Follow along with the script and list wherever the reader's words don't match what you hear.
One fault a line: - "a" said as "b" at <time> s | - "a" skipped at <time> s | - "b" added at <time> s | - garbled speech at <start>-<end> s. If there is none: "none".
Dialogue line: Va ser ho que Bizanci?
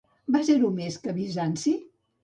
- "més" added at 0.8 s